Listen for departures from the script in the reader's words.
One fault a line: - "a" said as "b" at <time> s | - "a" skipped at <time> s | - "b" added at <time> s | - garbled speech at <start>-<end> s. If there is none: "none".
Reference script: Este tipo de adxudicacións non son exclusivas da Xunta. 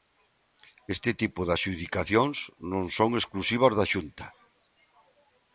none